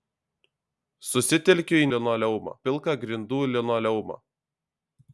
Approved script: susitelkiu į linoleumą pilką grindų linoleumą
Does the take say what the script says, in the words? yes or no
yes